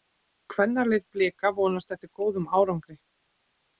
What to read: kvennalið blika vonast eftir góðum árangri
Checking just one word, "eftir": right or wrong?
right